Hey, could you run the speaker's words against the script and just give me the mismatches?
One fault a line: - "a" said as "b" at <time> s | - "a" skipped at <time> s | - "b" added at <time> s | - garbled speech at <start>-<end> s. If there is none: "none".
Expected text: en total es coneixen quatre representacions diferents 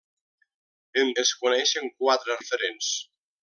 - "total" skipped at 1.1 s
- "representacions" skipped at 2.4 s